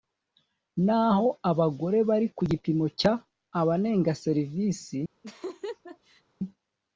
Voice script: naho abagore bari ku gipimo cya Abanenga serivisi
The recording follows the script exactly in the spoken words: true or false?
true